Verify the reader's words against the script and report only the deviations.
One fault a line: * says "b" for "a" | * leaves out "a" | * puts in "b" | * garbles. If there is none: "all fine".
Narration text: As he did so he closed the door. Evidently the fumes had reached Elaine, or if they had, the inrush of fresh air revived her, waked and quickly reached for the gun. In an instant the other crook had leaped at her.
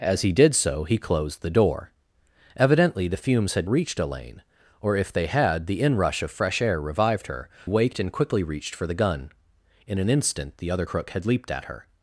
all fine